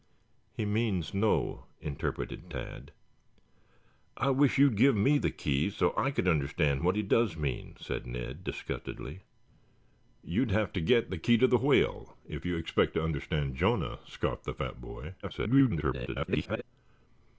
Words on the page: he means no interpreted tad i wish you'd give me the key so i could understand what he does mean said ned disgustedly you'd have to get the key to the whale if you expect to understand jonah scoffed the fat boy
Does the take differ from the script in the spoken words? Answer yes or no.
yes